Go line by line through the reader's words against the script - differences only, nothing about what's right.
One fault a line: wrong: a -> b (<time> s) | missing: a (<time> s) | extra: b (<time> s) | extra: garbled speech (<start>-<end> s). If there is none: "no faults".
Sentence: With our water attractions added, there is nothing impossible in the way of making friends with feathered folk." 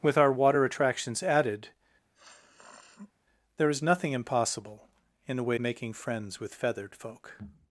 missing: of (5.6 s)